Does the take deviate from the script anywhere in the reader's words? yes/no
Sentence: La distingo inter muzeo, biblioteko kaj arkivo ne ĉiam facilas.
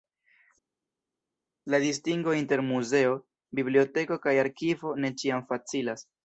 no